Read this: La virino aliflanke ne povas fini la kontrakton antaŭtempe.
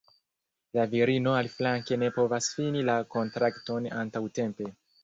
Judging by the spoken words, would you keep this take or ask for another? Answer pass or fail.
pass